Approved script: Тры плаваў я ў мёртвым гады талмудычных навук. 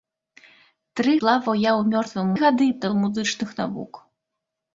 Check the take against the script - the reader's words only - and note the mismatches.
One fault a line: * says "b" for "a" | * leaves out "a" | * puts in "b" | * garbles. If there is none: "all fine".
all fine